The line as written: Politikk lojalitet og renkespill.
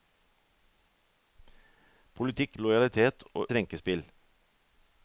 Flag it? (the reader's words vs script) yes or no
no